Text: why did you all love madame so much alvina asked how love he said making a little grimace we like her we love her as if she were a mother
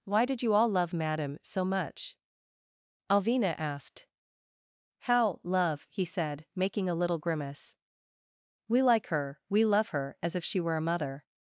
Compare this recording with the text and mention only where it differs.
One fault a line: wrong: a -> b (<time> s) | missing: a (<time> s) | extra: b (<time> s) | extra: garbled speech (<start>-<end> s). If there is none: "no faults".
no faults